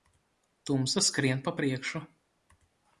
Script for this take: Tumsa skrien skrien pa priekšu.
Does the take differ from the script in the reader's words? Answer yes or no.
yes